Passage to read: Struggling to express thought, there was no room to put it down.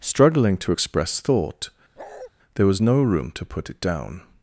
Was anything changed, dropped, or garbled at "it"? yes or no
no